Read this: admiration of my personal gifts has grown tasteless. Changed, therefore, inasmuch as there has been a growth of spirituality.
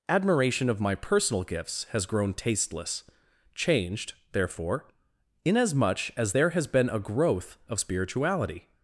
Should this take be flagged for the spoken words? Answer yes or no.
no